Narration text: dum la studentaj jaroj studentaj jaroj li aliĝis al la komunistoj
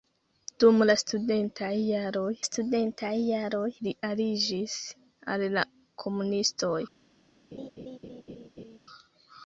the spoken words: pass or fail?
pass